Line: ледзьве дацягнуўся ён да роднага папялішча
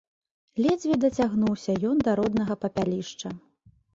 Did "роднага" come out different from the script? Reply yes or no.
no